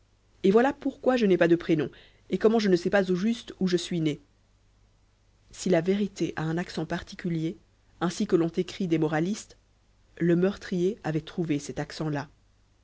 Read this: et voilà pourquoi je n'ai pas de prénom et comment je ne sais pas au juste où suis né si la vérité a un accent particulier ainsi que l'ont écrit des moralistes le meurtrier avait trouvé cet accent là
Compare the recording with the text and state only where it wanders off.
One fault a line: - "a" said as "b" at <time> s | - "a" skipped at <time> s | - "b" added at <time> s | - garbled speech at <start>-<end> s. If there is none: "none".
- "je" added at 3.7 s